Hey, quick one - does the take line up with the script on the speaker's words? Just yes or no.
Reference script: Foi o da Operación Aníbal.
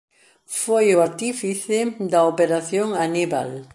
no